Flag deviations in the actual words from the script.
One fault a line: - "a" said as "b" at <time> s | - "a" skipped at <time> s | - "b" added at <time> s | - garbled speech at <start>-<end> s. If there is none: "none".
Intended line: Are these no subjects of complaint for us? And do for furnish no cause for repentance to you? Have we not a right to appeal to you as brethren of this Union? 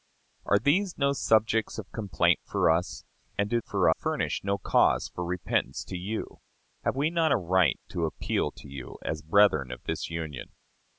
none